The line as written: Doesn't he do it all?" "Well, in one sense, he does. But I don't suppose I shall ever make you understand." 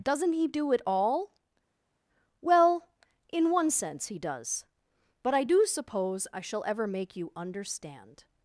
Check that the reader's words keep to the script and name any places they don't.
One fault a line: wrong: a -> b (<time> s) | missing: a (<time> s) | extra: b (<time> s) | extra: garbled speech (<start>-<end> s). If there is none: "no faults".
wrong: don't -> do (5.4 s)